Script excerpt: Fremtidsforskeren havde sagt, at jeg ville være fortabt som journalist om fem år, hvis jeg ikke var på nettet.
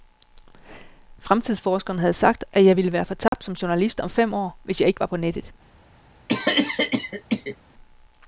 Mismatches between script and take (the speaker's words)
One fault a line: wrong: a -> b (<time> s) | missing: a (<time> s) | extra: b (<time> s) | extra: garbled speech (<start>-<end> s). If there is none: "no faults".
no faults